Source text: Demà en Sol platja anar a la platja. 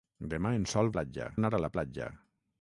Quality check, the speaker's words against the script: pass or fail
pass